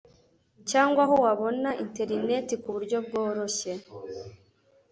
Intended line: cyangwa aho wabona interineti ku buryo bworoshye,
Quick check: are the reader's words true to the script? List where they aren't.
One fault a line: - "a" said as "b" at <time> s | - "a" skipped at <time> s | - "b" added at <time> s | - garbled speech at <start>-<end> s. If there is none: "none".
none